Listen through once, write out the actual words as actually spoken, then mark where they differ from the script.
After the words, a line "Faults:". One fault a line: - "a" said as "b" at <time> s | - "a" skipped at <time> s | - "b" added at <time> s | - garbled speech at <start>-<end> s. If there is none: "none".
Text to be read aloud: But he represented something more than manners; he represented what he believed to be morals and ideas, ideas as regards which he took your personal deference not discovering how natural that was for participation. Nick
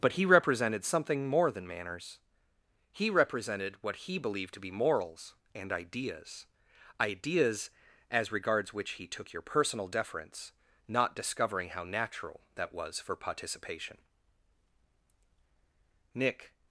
But he represented something more than manners; he represented what he believed to be morals and ideas, ideas as regards which he took your personal deference not discovering how natural that was for participation. Nick
Faults:
none